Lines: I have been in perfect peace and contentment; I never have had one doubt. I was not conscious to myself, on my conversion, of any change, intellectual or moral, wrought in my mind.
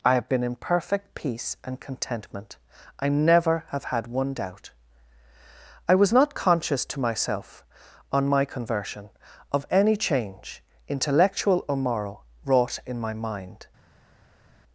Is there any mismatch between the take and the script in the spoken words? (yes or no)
no